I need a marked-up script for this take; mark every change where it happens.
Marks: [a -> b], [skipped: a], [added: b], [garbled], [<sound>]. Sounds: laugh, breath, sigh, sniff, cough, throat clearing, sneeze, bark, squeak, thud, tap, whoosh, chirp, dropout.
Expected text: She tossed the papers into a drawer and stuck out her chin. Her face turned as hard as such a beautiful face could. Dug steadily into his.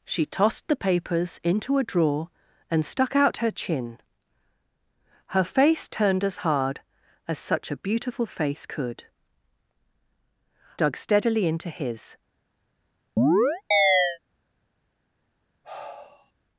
She tossed the papers into a drawer and stuck out her chin. Her face turned as hard as such a beautiful face could. Dug steadily into his. [chirp] [sigh]